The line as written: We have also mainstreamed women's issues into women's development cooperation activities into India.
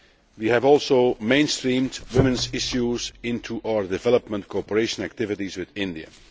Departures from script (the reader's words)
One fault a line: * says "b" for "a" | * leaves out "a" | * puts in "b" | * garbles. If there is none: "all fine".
* says "our" for "women's"
* says "with" for "into"